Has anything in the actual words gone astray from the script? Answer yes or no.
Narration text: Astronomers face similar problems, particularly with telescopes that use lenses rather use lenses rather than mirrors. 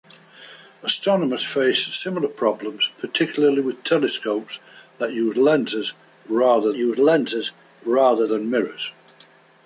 no